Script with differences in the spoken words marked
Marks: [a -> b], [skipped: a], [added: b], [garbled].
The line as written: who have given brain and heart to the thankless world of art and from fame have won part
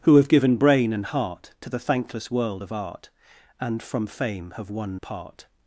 who have given brain and heart to the thankless world of art and from fame have won part